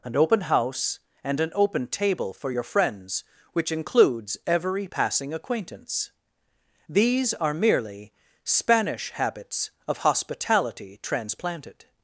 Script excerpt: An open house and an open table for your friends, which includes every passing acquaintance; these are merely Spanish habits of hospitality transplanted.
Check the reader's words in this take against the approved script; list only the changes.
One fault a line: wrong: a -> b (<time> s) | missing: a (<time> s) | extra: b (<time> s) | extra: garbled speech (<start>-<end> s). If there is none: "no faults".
no faults